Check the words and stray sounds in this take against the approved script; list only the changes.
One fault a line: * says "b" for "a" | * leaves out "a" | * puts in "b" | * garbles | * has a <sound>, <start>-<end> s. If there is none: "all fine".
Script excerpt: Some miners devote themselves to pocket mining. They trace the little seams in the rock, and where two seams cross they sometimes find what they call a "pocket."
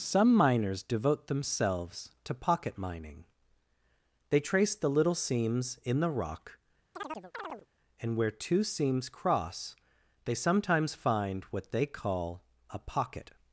* has a chirp, 6.9-7.7 s